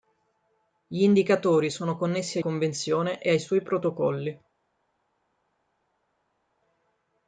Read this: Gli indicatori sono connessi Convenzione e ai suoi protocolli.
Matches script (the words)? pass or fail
pass